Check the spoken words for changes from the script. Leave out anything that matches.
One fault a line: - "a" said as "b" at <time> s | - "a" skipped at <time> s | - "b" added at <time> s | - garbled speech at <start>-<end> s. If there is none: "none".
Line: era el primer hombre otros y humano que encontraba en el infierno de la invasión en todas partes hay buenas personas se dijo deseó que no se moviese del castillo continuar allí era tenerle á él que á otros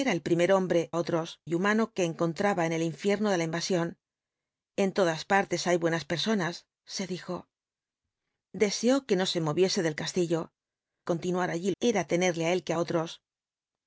none